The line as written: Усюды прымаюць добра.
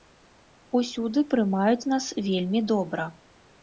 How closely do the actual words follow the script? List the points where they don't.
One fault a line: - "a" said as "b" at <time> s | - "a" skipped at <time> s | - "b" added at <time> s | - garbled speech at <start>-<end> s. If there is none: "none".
- "нас вельмі" added at 1.9 s